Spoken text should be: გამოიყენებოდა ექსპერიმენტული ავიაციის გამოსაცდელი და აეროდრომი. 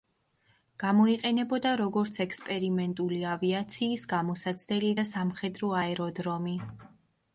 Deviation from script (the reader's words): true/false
true